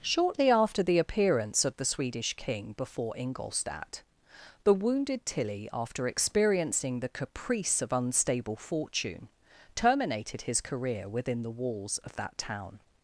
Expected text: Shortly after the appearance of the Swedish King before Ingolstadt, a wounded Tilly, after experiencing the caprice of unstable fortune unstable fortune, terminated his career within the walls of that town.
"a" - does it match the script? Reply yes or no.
no